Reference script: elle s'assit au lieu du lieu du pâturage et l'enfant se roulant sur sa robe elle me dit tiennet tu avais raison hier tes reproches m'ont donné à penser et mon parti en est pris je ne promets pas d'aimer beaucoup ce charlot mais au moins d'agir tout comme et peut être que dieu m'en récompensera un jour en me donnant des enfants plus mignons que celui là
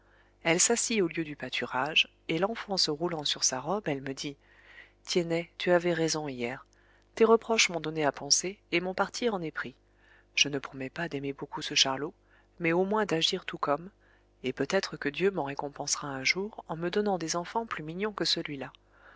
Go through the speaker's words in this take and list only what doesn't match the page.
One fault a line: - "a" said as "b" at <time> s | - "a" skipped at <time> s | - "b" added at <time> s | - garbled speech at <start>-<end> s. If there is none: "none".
- "lieu du" skipped at 1.3 s